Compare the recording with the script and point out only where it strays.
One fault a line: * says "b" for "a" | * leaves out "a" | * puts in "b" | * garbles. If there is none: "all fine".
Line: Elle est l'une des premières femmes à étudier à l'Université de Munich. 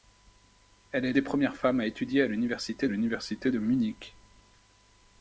* leaves out "l'une"
* puts in "l'Université"